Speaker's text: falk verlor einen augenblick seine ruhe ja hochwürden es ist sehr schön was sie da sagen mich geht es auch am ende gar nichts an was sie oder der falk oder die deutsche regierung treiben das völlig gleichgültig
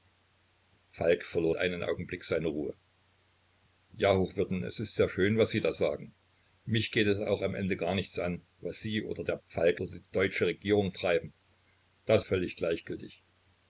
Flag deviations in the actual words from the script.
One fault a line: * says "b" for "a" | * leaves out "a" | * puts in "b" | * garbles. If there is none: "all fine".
all fine